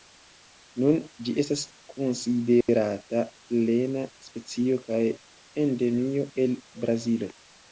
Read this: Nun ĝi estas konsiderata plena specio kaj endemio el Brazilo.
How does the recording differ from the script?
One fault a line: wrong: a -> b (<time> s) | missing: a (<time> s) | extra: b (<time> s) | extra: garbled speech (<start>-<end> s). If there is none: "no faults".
no faults